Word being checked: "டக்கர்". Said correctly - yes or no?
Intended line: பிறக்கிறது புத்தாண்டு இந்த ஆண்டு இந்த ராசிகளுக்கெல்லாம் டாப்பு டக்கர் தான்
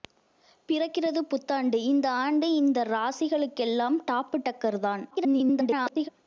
yes